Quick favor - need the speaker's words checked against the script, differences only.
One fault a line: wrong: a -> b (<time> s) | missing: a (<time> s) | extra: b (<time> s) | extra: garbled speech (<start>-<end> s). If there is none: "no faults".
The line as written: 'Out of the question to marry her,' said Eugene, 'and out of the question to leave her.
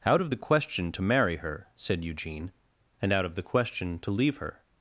no faults